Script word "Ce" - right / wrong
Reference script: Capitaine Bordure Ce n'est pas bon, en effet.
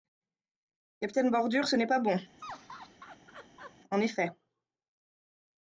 right